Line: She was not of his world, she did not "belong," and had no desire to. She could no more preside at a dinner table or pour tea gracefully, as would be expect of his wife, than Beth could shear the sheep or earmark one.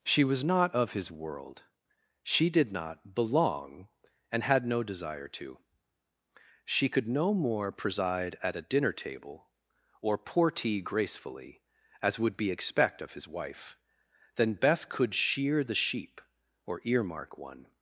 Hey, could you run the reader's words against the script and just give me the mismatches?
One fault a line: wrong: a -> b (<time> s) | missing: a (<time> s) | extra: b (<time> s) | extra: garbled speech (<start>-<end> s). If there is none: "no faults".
no faults